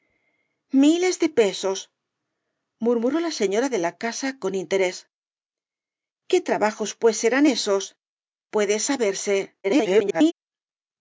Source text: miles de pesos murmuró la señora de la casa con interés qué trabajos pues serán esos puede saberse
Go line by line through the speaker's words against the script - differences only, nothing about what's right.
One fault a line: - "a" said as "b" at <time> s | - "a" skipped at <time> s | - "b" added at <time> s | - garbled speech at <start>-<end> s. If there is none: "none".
- garbled speech at 9.6-10.3 s